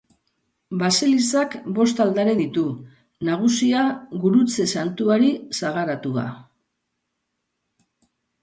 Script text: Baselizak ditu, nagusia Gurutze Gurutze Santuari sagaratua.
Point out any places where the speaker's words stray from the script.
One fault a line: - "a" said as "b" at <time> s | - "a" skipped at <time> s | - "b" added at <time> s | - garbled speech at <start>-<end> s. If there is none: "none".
- "bost aldare" added at 1.8 s
- "Gurutze" skipped at 4.7 s